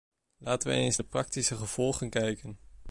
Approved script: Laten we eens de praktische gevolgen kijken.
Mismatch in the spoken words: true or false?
false